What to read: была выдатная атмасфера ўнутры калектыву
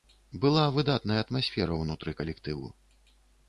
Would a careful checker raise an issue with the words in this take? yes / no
no